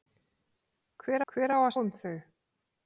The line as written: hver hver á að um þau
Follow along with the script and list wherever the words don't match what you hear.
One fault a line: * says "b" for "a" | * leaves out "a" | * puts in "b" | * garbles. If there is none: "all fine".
all fine